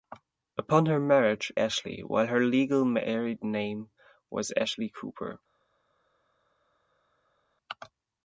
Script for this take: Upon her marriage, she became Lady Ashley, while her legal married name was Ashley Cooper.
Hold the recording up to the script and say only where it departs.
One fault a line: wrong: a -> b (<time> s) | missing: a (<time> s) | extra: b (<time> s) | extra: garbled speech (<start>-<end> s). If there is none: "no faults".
missing: she became Lady (1.5 s)